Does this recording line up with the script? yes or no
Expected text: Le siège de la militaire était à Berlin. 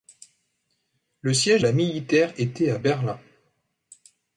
no